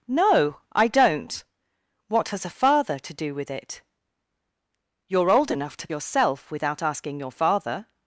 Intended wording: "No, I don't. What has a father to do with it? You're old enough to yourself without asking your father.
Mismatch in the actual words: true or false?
false